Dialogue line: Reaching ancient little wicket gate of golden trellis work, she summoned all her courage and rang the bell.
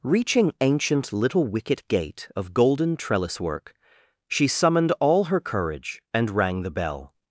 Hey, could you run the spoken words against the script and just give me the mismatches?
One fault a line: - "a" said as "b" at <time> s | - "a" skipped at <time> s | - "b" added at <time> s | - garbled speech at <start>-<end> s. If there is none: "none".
none